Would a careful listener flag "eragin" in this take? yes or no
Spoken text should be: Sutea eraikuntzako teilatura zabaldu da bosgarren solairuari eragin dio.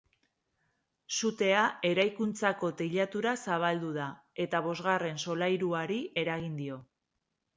no